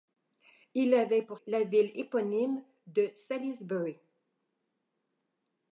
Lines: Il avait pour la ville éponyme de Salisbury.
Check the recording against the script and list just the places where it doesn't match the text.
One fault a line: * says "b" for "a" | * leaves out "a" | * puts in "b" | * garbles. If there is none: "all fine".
all fine